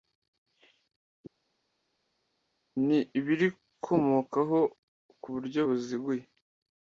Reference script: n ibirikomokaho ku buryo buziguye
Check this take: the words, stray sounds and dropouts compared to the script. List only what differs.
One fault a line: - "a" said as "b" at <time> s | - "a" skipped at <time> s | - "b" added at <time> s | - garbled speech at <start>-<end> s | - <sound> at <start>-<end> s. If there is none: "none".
none